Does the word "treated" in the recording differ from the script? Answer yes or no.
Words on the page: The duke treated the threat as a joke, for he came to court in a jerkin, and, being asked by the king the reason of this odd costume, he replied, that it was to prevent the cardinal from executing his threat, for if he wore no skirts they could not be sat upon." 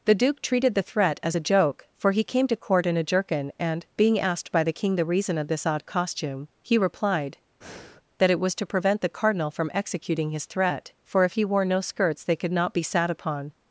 no